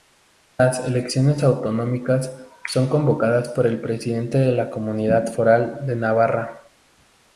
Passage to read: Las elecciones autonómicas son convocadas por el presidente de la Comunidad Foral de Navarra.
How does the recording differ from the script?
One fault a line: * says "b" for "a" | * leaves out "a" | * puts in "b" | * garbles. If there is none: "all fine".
all fine